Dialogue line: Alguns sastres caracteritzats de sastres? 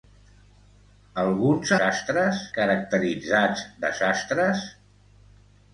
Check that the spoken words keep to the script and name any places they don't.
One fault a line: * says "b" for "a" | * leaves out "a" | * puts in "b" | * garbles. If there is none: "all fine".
all fine